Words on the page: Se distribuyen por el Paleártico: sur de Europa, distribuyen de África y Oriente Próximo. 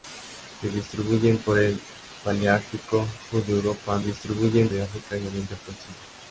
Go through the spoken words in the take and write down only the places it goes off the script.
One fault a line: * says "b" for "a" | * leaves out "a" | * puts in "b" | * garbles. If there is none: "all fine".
all fine